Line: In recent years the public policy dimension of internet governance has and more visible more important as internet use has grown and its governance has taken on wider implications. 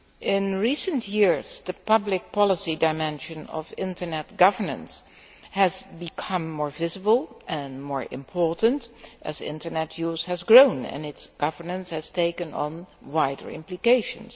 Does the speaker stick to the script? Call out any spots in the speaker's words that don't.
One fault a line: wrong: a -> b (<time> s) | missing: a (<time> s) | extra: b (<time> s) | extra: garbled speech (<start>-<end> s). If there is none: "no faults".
wrong: and -> become (6.0 s)
extra: and (7.5 s)